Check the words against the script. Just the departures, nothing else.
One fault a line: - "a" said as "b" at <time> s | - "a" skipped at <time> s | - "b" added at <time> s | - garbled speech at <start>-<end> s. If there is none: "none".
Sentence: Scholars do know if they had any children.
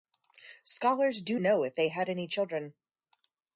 none